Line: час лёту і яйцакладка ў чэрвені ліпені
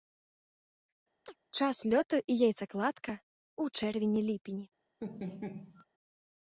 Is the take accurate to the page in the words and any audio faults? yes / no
no